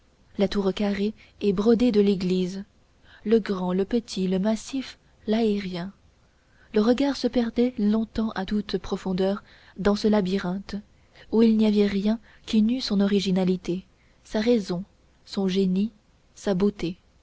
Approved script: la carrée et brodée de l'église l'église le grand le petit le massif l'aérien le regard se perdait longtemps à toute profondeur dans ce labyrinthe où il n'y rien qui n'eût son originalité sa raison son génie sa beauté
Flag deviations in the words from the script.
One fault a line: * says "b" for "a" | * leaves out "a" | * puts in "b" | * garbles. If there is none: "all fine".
* puts in "tour"
* leaves out "l'église"
* puts in "avait"